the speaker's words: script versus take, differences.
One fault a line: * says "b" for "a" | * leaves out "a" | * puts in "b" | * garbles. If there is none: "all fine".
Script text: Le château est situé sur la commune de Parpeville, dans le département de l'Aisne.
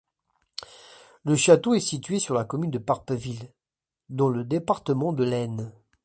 all fine